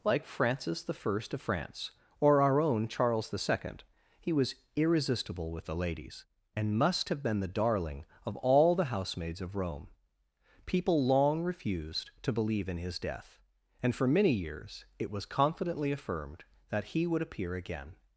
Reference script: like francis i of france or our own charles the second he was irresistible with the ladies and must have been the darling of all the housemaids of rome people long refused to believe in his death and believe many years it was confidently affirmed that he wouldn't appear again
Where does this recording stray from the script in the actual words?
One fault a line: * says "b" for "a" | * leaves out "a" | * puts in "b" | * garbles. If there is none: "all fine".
* says "for" for "believe"
* says "would" for "wouldn't"